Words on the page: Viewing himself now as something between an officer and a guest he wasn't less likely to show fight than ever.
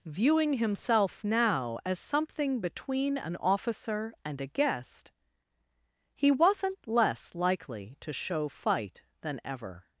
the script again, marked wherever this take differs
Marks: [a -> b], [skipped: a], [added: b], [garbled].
Viewing himself now as something between an officer and a guest he wasn't less likely to show fight than ever.